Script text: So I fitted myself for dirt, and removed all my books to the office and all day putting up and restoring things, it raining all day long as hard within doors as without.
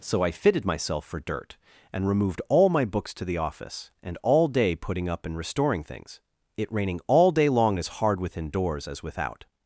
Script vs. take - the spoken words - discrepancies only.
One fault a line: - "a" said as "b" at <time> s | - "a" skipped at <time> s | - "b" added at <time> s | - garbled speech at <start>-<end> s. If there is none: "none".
none